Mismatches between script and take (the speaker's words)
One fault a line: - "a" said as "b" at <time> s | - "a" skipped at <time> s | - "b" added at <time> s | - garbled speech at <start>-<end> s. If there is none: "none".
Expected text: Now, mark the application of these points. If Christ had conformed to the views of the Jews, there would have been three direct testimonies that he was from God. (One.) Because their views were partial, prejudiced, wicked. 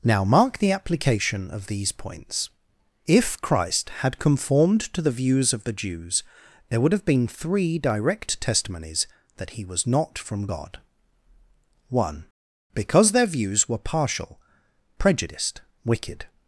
- "not" added at 9.8 s